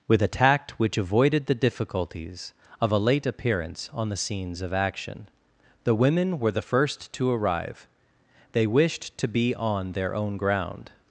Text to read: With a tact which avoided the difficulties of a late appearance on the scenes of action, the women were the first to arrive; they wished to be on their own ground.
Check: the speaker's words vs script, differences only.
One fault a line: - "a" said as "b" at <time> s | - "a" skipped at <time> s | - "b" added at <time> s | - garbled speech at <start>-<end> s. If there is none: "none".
none